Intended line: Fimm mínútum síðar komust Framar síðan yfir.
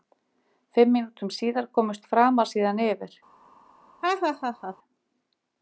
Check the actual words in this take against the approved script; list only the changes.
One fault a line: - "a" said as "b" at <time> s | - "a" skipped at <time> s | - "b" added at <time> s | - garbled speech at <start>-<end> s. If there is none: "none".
none